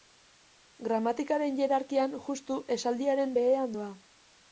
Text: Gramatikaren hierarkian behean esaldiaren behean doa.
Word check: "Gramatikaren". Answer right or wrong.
right